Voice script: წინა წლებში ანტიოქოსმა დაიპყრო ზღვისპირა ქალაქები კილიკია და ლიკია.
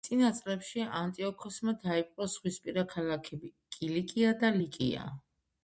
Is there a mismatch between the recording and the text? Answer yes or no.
no